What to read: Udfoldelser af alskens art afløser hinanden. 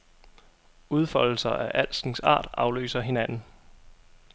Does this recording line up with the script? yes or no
yes